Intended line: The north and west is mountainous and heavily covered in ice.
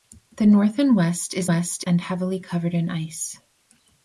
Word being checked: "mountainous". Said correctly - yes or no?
no